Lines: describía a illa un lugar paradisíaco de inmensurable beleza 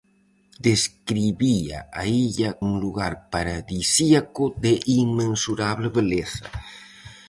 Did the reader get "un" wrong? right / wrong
right